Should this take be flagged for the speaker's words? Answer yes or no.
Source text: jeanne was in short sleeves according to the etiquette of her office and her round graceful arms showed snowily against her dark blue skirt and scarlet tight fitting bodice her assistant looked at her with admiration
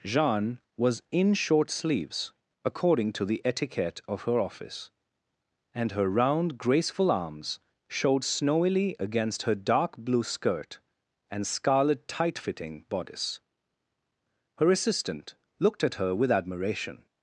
no